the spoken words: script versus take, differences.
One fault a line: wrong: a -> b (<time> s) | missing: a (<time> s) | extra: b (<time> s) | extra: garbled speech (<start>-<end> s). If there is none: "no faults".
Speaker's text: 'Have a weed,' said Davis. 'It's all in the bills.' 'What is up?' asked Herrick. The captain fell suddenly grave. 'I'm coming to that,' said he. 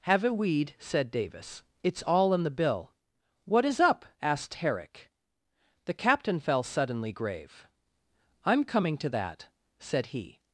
wrong: bills -> bill (2.6 s)